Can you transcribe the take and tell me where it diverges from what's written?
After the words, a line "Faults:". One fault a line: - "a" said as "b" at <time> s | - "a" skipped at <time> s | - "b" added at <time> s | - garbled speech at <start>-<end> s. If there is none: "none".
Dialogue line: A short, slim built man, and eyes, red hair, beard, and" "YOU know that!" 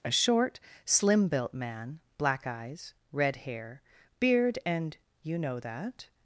A short, slim built man, black eyes, red hair, beard, and" "YOU know that!"
Faults:
- "and" said as "black" at 2.2 s